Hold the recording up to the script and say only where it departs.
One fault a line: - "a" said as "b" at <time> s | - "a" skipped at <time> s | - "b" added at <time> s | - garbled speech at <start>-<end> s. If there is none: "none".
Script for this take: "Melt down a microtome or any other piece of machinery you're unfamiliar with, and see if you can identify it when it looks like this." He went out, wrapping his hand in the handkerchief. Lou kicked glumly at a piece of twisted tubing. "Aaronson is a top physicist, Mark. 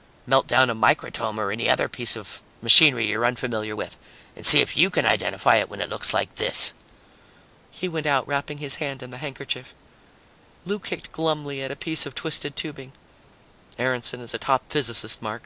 none